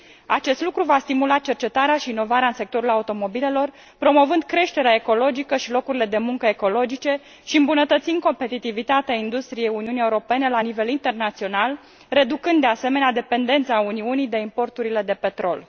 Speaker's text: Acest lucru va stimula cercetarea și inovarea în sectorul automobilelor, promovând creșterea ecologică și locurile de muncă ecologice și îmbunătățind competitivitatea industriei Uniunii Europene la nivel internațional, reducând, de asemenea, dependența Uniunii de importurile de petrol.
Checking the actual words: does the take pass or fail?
pass